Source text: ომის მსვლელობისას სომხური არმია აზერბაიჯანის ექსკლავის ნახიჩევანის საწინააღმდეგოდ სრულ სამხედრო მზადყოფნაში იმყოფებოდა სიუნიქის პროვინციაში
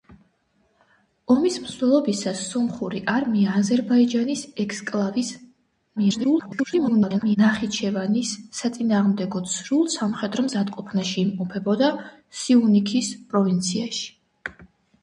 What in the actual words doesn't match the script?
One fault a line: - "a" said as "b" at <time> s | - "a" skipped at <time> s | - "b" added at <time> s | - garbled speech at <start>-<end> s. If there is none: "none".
- garbled speech at 6.0-7.4 s